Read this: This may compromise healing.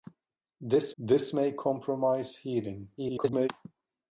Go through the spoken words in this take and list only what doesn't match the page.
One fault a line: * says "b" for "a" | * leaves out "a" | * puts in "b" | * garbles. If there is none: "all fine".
* puts in "this"
* garbles